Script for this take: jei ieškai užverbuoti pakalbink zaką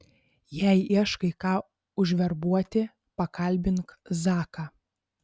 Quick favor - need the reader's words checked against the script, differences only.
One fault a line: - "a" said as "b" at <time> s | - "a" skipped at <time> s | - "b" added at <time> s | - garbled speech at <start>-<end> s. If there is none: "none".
- "ką" added at 1.4 s